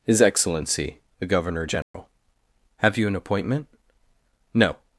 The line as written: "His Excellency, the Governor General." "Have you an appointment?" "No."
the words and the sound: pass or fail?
fail